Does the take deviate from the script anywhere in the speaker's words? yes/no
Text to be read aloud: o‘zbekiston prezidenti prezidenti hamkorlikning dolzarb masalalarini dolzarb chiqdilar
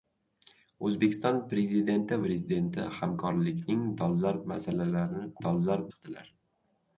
no